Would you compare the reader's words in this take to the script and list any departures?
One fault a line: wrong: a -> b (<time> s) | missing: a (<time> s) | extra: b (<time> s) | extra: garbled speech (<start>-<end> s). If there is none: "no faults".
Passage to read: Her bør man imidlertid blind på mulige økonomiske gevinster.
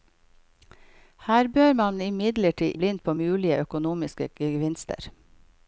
no faults